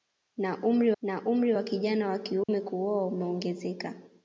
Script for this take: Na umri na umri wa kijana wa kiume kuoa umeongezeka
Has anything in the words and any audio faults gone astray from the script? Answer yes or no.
yes